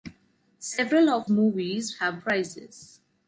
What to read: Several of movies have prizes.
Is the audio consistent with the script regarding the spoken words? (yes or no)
yes